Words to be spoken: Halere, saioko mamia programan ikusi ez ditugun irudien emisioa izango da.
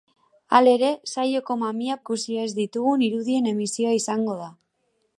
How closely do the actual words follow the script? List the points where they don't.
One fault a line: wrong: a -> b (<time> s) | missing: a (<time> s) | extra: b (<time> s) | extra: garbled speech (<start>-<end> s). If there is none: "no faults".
missing: programan (2.0 s)